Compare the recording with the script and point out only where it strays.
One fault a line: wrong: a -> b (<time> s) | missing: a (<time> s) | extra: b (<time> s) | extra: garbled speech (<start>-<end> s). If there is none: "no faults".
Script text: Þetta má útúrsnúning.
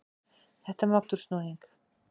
no faults